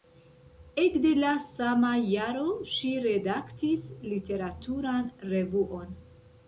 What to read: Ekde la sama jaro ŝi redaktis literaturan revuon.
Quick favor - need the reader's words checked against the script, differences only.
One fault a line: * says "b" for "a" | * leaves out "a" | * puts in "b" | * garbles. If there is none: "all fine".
all fine